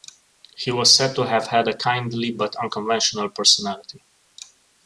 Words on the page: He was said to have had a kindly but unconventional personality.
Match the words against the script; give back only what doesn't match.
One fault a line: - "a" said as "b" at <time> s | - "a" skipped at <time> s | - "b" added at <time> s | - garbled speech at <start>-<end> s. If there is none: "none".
none